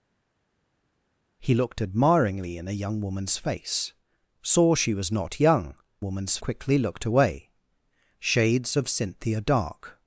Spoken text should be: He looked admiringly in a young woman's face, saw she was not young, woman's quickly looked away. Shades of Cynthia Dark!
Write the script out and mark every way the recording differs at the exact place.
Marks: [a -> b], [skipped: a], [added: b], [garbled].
He looked admiringly in a young woman's face, saw she was not young, woman's quickly looked away. Shades of Cynthia Dark!